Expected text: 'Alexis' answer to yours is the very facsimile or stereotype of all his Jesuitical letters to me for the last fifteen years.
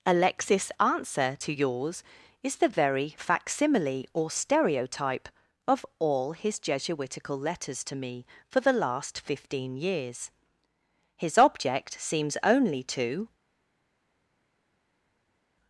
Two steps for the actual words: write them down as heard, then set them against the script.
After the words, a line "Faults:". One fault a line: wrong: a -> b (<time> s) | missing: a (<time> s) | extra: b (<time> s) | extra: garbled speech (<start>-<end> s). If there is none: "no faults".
'Alexis' answer to yours is the very facsimile or stereotype of all his Jesuitical letters to me for the last fifteen years. His object seems only to
Faults:
extra: His object seems only to (11.1 s)